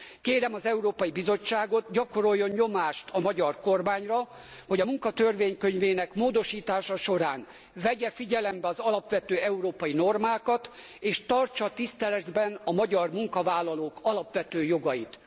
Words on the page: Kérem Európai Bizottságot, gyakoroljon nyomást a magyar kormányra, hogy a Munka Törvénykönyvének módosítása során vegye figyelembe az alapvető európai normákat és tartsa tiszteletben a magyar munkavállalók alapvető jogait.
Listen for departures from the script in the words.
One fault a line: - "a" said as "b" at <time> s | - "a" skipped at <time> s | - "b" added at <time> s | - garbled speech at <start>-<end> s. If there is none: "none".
- "az" added at 0.5 s